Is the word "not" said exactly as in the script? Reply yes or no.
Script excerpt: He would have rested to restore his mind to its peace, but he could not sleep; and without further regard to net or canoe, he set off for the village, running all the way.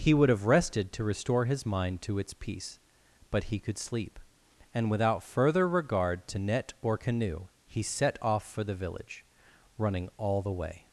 no